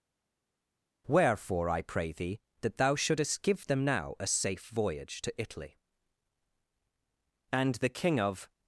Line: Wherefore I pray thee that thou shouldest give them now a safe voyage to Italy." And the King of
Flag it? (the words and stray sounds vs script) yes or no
no